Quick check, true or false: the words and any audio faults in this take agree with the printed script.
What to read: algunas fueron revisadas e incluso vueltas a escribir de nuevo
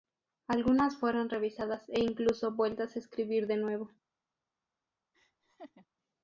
false